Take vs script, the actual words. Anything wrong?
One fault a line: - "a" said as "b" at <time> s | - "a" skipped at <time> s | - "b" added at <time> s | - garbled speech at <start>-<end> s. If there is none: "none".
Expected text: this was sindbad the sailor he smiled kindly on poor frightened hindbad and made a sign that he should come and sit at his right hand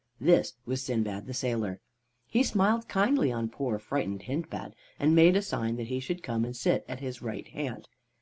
none